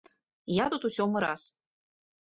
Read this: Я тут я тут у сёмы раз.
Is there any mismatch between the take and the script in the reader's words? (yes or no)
yes